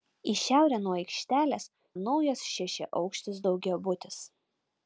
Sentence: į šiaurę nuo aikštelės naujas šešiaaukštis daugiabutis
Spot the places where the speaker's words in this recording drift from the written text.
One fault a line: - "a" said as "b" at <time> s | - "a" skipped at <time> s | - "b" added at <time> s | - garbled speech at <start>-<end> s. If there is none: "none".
none